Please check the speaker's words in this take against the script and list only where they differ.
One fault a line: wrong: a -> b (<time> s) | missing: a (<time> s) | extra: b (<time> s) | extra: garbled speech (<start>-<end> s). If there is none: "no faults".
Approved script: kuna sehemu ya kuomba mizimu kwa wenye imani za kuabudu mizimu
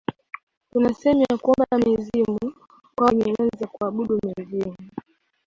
no faults